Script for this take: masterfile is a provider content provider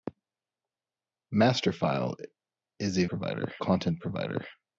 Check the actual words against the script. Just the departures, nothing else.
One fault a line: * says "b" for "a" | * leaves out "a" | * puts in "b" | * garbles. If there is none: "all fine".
all fine